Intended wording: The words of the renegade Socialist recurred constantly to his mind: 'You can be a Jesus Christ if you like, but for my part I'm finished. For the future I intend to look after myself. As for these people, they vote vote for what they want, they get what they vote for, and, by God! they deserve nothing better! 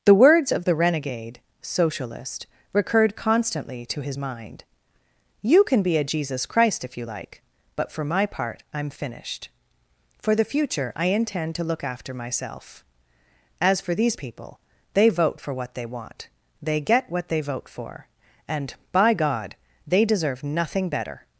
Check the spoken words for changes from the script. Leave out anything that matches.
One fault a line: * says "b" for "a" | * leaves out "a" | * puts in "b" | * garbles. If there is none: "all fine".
* leaves out "vote"